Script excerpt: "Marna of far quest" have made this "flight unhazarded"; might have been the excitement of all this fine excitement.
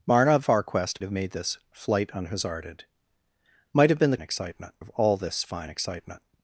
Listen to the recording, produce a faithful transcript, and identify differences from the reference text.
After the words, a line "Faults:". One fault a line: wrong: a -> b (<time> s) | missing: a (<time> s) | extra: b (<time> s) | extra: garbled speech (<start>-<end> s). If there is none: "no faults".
"Marna of far quest" have made this "flight unhazarded"; might have been the excitement of all this fine excitement.
Faults:
no faults